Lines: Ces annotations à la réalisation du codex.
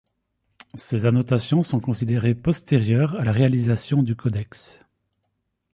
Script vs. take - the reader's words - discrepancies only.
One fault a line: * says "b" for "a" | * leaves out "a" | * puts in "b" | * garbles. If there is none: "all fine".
* puts in "sont considérées postérieures"